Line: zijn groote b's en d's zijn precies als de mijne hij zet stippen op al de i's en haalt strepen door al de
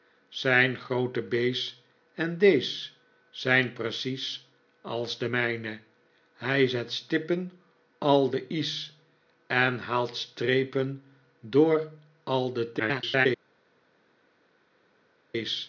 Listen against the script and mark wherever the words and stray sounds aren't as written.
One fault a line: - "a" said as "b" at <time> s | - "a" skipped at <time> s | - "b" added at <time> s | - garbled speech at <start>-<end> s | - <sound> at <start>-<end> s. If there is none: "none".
- "op" skipped at 7.5 s
- garbled speech at 12.8-13.3 s